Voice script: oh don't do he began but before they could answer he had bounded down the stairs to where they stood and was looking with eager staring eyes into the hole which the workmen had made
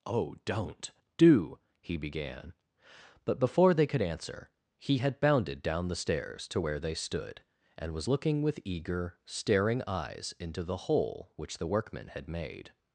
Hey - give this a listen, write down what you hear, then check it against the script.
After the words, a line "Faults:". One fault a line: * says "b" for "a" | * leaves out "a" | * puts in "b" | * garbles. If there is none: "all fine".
oh don't do he began but before they could answer he had bounded down the stairs to where they stood and was looking with eager staring eyes into the hole which the workmen had made
Faults:
all fine